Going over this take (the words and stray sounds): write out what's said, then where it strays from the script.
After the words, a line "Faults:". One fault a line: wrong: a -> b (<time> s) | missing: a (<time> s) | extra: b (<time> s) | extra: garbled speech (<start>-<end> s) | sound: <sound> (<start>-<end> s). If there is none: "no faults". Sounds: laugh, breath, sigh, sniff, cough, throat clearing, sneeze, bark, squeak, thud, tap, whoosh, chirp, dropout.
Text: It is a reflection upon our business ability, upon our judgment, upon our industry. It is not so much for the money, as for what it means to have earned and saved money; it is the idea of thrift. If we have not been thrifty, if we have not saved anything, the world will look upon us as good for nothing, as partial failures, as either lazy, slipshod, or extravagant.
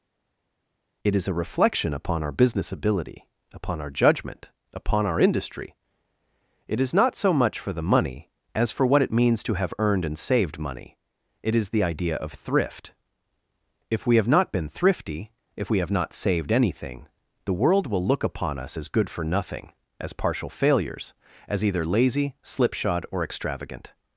It is a reflection upon our business ability, upon our judgment, upon our industry. It is not so much for the money, as for what it means to have earned and saved money; it is the idea of thrift. If we have not been thrifty, if we have not saved anything, the world will look upon us as good for nothing, as partial failures, as either lazy, slipshod, or extravagant.
Faults:
no faults